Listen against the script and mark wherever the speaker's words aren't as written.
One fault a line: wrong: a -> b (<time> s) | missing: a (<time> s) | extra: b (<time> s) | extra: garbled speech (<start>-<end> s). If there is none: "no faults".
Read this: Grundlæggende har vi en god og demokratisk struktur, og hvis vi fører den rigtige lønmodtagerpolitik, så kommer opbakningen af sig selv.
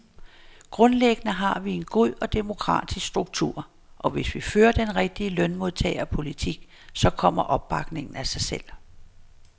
no faults